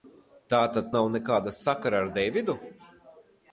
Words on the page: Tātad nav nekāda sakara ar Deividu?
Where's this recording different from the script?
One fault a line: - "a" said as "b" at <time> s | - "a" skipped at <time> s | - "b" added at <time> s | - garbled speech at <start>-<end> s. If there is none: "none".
none